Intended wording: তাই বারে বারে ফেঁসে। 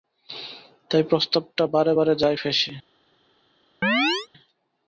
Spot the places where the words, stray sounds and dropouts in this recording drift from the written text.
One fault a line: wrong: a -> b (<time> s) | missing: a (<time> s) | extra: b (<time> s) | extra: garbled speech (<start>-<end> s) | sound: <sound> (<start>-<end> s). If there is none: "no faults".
extra: প্রস্তাবটা (1.0 s)
extra: যায় (2.2 s)
sound: chirp (3.8-4.3 s)